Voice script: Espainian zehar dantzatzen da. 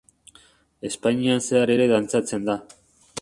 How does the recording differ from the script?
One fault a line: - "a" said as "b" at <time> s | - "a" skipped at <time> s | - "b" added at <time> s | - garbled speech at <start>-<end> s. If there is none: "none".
- "ere" added at 1.7 s